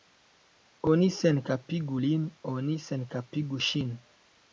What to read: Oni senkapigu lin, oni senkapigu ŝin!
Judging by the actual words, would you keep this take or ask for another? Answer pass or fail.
pass